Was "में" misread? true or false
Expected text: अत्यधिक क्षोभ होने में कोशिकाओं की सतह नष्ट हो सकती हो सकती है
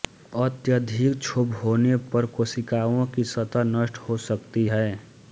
true